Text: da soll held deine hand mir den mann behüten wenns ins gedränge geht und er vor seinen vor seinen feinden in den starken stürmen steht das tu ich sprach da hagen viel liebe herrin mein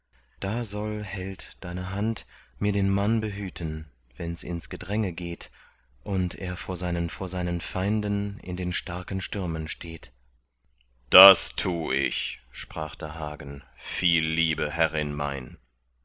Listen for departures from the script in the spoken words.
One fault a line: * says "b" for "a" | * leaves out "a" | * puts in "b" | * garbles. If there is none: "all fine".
all fine